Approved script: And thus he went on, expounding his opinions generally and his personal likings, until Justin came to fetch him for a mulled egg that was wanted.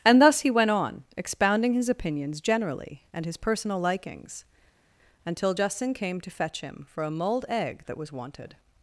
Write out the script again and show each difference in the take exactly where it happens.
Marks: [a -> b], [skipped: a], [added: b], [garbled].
And thus he went on, expounding his opinions generally and his personal likings, until Justin came to fetch him for a mulled egg that was wanted.